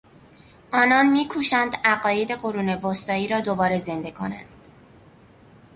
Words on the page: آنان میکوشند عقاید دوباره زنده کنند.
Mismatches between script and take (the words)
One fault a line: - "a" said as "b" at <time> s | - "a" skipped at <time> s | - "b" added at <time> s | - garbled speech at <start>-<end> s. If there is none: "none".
- "قرون وسطایی را" added at 2.3 s